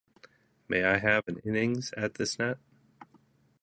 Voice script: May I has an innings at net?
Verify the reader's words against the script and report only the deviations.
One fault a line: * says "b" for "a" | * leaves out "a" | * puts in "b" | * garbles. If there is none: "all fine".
* says "have" for "has"
* puts in "this"